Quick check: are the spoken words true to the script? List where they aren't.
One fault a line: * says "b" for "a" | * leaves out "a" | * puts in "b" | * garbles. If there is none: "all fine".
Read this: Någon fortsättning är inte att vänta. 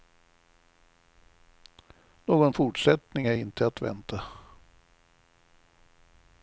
all fine